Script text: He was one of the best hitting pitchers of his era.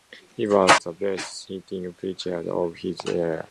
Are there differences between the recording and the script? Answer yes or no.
yes